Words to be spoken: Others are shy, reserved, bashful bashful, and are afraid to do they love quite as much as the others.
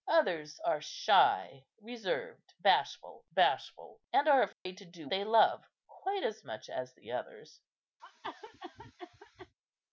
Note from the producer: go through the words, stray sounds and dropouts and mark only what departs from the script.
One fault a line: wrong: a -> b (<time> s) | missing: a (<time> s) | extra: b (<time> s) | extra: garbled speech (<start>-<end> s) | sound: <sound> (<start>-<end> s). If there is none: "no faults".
sound: dropout (4.5-4.7 s)
sound: cough (8.0-9.5 s)